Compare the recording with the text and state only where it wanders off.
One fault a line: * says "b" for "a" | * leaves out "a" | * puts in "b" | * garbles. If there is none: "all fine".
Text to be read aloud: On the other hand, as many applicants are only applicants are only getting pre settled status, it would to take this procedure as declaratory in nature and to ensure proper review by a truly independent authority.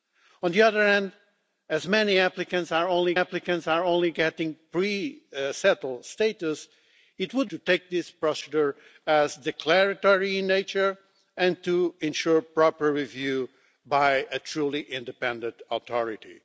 all fine